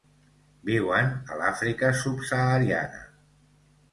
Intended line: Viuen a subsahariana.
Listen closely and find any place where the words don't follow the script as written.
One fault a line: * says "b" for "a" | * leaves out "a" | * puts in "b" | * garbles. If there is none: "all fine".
* puts in "l'Àfrica"